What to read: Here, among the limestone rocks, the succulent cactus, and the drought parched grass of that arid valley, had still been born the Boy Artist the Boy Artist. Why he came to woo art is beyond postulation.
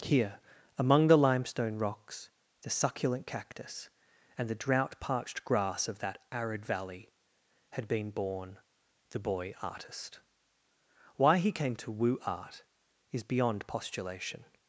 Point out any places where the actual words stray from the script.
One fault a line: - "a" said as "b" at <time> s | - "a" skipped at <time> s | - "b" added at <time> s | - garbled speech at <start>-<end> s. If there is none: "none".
- "still" skipped at 7.9 s
- "the Boy Artist" skipped at 10.2 s